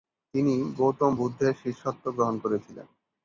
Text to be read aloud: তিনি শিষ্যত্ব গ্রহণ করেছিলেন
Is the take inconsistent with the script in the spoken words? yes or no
yes